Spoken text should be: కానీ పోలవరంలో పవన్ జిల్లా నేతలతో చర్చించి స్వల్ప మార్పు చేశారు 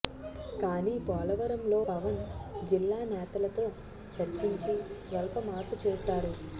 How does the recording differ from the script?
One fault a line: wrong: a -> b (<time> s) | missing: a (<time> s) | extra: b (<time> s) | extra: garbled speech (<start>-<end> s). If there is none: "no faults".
no faults